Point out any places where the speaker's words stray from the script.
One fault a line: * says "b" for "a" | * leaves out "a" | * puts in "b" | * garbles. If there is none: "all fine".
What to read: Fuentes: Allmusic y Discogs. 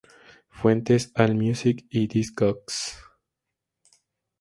all fine